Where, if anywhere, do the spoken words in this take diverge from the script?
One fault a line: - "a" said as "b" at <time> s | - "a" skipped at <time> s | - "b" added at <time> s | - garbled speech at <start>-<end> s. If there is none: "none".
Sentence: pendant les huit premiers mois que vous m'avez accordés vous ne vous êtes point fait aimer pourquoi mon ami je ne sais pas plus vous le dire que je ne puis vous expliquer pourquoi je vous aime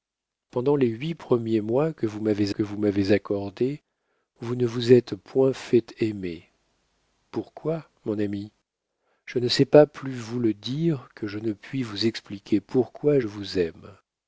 - "que vous m'avez" added at 2.5 s